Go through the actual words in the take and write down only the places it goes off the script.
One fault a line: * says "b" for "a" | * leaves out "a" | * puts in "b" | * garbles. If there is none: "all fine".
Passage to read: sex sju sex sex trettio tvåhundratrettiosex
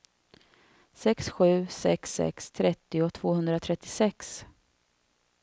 all fine